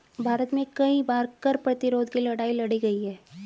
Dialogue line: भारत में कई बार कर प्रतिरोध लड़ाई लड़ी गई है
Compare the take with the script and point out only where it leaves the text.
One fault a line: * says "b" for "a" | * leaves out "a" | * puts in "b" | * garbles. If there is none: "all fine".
* puts in "की"